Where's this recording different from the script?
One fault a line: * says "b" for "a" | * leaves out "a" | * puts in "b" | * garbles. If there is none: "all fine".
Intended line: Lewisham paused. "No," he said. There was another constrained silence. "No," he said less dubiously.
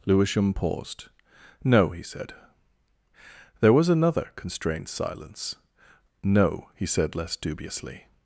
all fine